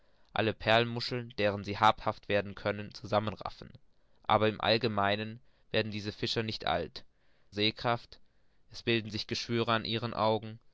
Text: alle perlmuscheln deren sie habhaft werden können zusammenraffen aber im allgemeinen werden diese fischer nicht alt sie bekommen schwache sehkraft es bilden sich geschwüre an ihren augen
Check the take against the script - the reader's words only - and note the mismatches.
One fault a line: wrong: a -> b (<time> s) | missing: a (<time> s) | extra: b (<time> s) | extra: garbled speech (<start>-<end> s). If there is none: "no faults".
missing: sie bekommen schwache (7.0 s)